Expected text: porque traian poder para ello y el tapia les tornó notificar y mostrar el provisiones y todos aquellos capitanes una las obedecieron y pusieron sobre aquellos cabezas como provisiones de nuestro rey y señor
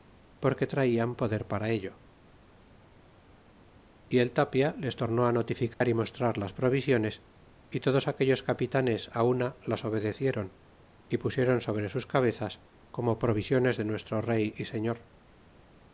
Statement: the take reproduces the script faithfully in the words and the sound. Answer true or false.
false